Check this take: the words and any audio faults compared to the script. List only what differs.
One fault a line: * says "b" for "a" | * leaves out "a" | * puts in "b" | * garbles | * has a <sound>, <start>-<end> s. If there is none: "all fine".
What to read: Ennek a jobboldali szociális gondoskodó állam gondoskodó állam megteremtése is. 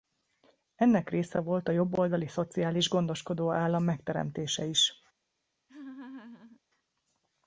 * puts in "része volt"
* leaves out "gondoskodó állam"
* has a laugh, 5.7-6.6 s